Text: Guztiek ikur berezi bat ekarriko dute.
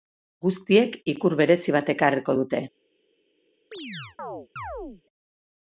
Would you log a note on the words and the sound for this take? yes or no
yes